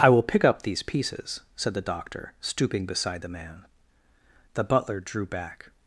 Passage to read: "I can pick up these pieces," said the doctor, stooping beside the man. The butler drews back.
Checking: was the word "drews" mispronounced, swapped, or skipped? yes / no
yes